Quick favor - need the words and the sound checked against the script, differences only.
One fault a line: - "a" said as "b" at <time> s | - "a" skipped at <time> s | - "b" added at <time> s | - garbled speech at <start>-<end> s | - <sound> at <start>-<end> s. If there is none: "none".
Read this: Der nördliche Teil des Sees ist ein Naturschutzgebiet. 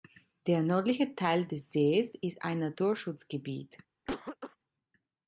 - cough at 4.1-4.6 s